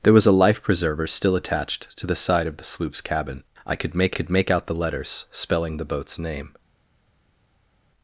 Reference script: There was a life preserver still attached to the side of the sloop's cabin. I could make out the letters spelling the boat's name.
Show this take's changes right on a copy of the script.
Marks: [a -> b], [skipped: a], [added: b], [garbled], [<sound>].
There was a life preserver still attached to the side of the sloop's cabin. I could make [added: could make] out the letters spelling the boat's name.